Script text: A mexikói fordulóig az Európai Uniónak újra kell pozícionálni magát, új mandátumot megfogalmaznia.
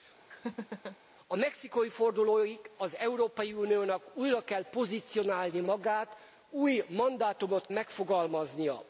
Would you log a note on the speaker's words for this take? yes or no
no